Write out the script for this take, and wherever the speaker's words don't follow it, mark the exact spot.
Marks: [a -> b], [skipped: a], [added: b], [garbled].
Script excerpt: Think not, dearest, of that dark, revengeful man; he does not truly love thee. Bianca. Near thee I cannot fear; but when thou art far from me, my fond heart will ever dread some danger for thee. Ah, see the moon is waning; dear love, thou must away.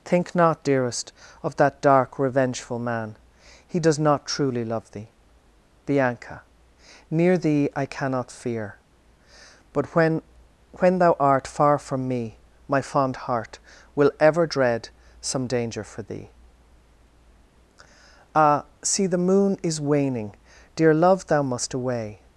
Think not, dearest, of that dark, revengeful man; he does not truly love thee. Bianca. Near thee I cannot fear; but when [added: when] thou art far from me, my fond heart will ever dread some danger for thee. Ah, see the moon is waning; dear love, thou must away.